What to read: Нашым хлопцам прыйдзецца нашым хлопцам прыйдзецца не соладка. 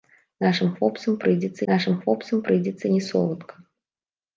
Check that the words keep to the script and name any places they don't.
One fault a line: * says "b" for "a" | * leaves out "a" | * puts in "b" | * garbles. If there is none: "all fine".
all fine